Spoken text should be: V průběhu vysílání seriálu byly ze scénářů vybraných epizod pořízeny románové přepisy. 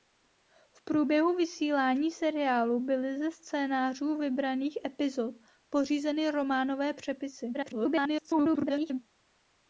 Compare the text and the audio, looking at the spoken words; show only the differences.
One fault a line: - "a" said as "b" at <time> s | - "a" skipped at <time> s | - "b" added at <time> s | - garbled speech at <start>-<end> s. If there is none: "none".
- garbled speech at 7.5-9.0 s